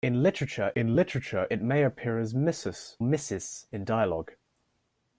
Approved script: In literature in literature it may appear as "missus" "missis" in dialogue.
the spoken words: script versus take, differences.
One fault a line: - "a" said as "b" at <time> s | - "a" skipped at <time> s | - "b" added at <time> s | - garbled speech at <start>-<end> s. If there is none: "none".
none